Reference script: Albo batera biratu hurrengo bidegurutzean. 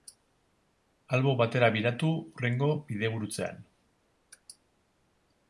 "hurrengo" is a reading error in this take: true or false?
false